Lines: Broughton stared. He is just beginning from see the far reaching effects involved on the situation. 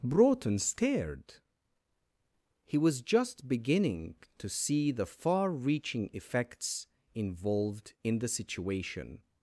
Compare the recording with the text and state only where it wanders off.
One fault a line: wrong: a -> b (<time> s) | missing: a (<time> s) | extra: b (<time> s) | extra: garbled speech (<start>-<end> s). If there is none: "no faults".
wrong: is -> was (2.8 s)
wrong: from -> to (4.4 s)
wrong: on -> in (8.0 s)